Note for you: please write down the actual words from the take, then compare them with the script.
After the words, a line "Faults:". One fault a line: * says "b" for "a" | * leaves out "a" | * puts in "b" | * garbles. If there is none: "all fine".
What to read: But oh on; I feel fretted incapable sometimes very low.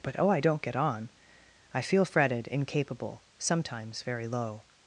But oh I don't get on; I feel fretted incapable sometimes very low.
Faults:
* puts in "I don't get"